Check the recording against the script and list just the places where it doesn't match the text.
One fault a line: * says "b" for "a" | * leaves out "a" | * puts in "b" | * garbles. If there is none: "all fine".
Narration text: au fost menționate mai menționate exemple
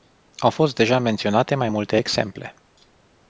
* puts in "deja"
* says "multe" for "menționate"